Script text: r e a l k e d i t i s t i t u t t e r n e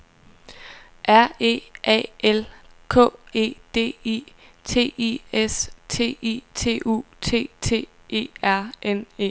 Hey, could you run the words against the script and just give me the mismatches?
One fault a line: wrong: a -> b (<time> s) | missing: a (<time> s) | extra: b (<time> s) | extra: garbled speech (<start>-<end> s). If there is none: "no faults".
no faults